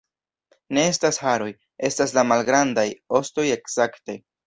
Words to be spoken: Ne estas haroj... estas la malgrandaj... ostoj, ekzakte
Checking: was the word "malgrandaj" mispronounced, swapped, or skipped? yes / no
no